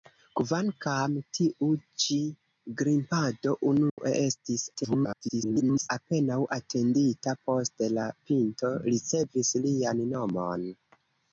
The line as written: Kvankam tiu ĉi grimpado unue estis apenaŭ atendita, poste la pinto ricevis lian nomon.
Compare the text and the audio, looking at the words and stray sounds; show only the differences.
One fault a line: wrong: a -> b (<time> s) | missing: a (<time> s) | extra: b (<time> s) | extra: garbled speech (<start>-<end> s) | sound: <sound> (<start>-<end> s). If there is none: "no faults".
sound: dropout (3.9-4.0 s)
extra: garbled speech (4.7-5.9 s)